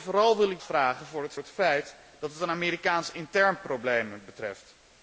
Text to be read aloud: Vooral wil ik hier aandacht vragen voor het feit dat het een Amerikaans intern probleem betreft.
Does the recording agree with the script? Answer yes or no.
no